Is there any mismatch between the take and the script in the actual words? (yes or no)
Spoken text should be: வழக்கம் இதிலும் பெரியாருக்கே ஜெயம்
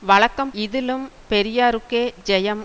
no